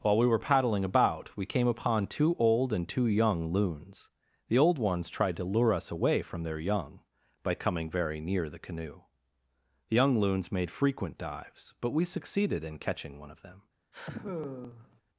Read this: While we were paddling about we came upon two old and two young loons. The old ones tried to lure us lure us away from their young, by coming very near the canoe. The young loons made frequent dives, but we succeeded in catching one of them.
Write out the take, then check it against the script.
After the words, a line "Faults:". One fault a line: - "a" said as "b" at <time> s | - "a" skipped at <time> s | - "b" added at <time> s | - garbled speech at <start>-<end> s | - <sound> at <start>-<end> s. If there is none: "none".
While we were paddling about we came upon two old and two young loons. The old ones tried to lure us away from their young, by coming very near the canoe. The young loons made frequent dives, but we succeeded in catching one of them.
Faults:
- "lure us" skipped at 5.9 s
- sigh at 13.9-15.0 s